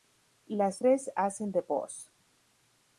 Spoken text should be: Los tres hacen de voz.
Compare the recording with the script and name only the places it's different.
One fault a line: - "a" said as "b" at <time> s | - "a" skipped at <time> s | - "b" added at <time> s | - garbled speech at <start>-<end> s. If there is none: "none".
- "Los" said as "Las" at 0.5 s